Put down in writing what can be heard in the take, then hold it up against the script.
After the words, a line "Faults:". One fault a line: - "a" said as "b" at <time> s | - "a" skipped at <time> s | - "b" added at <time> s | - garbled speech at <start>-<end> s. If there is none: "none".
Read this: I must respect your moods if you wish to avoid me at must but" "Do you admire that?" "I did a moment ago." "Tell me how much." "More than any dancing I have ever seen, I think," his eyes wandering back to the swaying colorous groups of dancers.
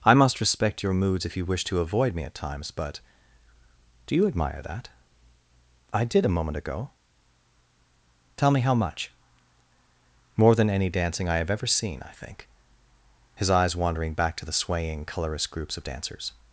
I must respect your moods if you wish to avoid me at times but" "Do you admire that?" "I did a moment ago." "Tell me how much." "More than any dancing I have ever seen, I think," his eyes wandering back to the swaying colorous groups of dancers.
Faults:
- "must" said as "times" at 2.3 s